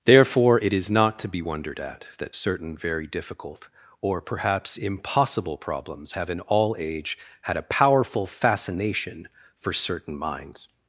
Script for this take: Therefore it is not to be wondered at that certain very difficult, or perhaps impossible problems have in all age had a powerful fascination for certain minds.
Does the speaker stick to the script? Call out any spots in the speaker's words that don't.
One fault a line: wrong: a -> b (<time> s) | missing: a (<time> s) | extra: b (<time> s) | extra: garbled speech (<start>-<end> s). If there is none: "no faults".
no faults